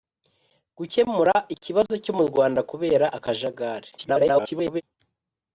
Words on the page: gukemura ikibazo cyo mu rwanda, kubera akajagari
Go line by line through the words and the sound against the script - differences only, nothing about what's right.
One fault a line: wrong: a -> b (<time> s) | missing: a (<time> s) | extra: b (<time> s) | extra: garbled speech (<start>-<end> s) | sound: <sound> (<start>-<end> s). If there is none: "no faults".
extra: garbled speech (4.0-4.8 s)